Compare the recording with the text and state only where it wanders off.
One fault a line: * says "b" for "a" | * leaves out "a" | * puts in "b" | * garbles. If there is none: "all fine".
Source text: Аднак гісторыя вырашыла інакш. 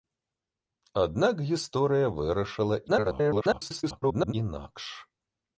* garbles